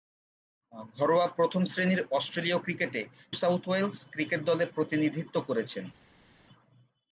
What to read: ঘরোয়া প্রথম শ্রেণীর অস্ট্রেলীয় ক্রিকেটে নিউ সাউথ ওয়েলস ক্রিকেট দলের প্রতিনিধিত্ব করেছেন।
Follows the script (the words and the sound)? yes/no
no